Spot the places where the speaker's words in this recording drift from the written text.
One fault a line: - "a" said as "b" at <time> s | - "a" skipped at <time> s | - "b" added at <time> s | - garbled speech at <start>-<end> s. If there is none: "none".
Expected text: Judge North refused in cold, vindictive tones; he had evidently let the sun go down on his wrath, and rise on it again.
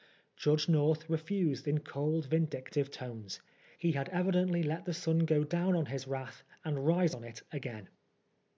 none